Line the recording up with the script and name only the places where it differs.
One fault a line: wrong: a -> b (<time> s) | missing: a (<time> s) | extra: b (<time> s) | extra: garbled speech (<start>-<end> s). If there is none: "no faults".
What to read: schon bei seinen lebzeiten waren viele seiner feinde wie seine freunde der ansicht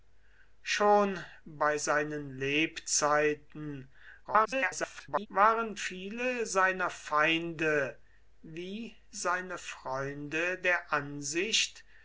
extra: garbled speech (4.2-5.3 s)